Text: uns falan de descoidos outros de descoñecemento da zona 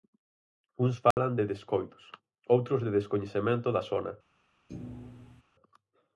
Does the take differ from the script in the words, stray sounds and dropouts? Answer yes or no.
yes